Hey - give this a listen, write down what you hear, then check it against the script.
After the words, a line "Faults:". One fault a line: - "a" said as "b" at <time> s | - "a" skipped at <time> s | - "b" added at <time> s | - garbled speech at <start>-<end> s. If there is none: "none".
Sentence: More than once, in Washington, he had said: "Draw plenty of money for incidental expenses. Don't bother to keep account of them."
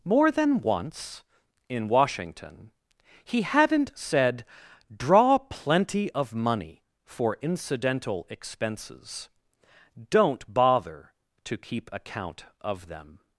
More than once, in Washington, he hadn't said: "Draw plenty of money for incidental expenses. Don't bother to keep account of them."
Faults:
- "had" said as "hadn't" at 3.4 s